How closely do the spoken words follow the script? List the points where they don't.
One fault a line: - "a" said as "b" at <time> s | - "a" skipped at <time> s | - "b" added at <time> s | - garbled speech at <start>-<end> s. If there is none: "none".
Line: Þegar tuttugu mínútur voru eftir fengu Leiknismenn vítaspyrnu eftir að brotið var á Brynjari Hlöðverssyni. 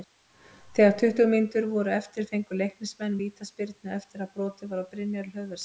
none